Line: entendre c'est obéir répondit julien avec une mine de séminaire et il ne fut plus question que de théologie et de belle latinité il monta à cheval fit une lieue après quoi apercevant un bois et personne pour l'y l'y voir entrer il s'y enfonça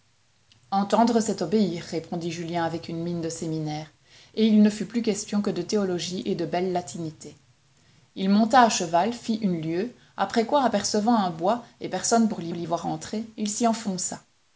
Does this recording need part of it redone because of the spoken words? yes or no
no